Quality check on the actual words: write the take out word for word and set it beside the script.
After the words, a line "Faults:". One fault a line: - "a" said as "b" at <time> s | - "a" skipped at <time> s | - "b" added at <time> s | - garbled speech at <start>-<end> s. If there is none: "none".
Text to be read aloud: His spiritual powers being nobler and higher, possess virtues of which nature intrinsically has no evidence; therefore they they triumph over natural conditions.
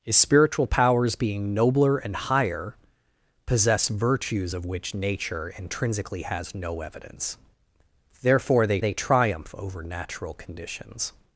His spiritual powers being nobler and higher, possess virtues of which nature intrinsically has no evidence; therefore they they triumph over natural conditions.
Faults:
none